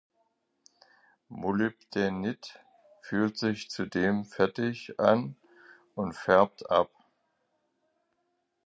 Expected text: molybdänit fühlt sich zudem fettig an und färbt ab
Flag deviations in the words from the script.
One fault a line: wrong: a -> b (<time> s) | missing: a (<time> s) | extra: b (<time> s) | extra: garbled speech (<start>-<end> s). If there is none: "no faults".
no faults